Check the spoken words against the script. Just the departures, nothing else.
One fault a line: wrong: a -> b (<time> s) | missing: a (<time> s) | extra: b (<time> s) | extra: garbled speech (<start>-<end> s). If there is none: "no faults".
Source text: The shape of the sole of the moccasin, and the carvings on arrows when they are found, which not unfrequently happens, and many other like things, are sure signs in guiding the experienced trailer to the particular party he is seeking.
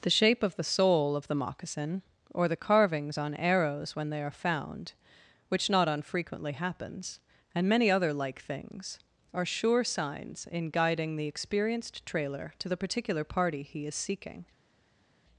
wrong: and -> or (2.3 s)